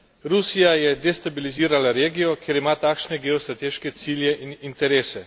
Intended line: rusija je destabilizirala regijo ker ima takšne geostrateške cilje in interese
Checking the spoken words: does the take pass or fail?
pass